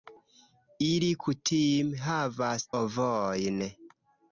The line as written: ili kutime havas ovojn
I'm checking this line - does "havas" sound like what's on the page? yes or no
yes